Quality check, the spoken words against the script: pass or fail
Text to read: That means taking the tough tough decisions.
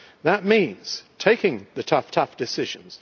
pass